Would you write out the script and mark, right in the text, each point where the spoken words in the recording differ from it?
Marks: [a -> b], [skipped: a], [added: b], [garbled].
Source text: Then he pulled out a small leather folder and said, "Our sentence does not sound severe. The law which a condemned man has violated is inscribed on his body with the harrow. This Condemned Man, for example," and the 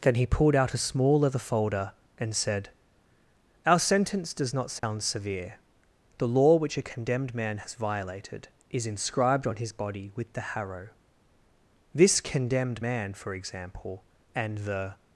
Then he pulled out a small leather folder and said, "Our sentence does not sound severe. The law which a condemned man has violated is inscribed on his body with the harrow. This Condemned Man, for example," and the